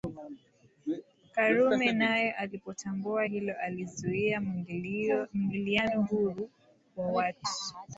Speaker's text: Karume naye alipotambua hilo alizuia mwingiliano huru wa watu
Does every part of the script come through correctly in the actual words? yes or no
yes